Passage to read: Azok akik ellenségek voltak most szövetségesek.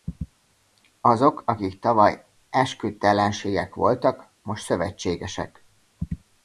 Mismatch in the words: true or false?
true